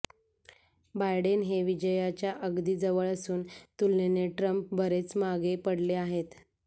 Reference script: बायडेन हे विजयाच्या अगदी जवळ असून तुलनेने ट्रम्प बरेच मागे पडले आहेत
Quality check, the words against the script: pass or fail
pass